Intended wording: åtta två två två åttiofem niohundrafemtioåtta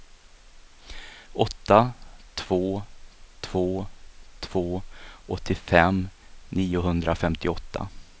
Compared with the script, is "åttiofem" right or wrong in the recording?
right